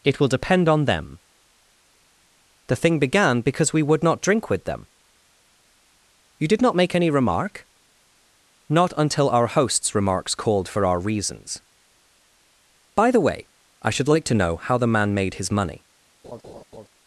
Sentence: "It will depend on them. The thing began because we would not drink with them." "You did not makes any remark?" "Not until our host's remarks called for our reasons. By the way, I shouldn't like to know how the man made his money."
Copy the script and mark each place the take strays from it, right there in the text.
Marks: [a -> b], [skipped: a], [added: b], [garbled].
"It will depend on them. The thing began because we would not drink with them." "You did not [makes -> make] any remark?" "Not until our host's remarks called for our reasons. By the way, I [shouldn't -> should] like to know how the man made his money."